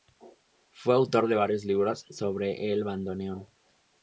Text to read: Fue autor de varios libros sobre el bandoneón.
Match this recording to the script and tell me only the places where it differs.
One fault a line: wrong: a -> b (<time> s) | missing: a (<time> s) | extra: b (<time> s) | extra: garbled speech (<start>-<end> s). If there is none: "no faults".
no faults